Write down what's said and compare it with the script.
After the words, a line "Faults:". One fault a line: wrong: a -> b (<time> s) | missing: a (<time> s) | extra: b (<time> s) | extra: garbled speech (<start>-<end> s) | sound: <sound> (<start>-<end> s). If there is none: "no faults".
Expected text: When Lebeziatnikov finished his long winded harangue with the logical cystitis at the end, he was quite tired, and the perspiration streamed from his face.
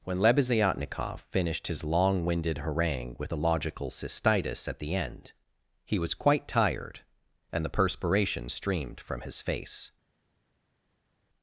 When Lebeziatnikov finished his long winded harangue with the logical cystitis at the end, he was quite tired, and the perspiration streamed from his face.
Faults:
no faults